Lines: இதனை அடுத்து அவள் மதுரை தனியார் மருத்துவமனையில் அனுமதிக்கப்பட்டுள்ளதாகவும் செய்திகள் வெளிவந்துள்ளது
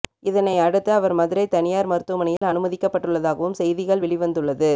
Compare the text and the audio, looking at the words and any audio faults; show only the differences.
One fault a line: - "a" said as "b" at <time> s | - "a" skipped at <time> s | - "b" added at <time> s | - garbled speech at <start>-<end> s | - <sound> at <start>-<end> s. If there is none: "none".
- "அவள்" said as "அவர்" at 0.9 s
- dropout at 2.4-2.4 s